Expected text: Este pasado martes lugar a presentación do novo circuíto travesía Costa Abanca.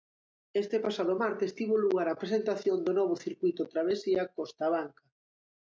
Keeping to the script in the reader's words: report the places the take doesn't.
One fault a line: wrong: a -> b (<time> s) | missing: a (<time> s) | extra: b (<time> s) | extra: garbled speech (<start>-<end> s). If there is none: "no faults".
extra: tivo (1.6 s)